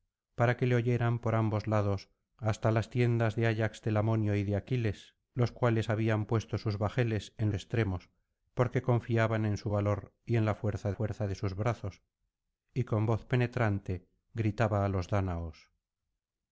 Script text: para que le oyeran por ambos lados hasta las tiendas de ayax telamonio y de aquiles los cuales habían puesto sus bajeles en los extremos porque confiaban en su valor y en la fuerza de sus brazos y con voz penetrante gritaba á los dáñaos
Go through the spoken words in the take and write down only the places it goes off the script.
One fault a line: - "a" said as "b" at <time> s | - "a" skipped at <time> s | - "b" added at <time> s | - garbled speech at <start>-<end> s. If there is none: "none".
- "los" skipped at 7.5 s
- "fuerza" added at 10.9 s